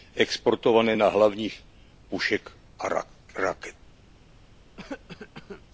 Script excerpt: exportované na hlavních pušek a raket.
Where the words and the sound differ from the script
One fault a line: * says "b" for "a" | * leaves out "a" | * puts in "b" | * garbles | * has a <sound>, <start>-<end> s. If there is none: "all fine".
* has a cough, 4.8-5.6 s